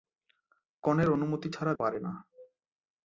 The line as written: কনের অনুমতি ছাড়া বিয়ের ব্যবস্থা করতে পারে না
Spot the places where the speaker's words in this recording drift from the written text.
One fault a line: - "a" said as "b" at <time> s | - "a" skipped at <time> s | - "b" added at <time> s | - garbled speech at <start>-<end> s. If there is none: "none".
- "বিয়ের ব্যবস্থা করতে" skipped at 1.7 s